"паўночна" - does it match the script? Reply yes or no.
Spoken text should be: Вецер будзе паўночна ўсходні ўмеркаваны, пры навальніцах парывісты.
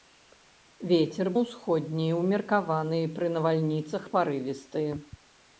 no